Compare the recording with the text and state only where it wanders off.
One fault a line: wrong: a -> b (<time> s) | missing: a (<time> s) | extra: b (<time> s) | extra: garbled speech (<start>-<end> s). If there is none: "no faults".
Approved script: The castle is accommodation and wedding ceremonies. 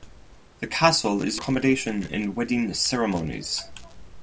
no faults